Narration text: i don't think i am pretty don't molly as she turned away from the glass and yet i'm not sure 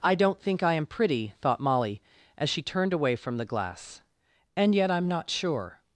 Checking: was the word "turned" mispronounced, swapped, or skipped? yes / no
no